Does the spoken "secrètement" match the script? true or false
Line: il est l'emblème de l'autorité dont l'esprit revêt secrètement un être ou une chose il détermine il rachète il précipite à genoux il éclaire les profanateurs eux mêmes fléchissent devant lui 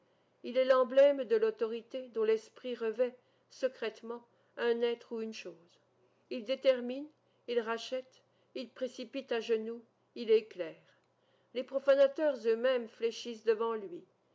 true